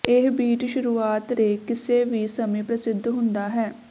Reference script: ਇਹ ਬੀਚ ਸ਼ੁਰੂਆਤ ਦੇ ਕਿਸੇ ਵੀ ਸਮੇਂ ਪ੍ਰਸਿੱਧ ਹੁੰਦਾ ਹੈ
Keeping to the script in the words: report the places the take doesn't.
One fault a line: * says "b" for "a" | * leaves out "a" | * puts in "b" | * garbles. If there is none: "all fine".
all fine